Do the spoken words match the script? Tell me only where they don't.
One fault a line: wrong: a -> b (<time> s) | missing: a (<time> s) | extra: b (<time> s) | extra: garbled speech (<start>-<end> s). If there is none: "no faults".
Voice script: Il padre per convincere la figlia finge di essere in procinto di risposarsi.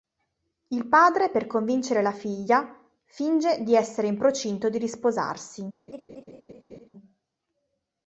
no faults